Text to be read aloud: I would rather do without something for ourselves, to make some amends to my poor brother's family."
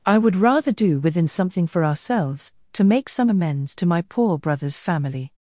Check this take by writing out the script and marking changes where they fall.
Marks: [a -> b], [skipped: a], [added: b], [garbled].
I would rather do [without -> within] something for ourselves, to make some amends to my poor brother's family."